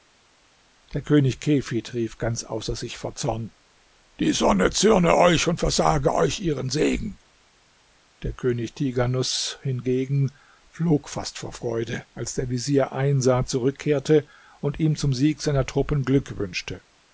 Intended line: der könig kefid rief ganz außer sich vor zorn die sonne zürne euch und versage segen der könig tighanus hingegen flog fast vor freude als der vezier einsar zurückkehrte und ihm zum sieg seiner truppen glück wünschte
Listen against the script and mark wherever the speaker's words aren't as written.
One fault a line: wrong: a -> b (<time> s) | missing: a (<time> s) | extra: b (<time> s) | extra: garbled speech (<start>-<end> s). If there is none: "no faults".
extra: euch ihren (6.1 s)